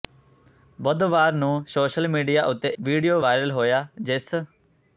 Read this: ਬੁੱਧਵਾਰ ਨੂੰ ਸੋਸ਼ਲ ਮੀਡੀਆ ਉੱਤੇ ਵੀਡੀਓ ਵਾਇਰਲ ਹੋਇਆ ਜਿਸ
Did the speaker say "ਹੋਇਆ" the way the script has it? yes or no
yes